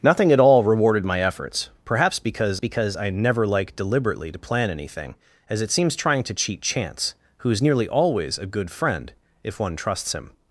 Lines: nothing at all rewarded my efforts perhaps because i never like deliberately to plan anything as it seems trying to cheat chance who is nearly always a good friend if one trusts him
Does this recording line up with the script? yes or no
no